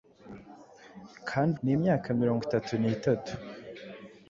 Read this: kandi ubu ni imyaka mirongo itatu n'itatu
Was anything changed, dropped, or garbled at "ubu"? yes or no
yes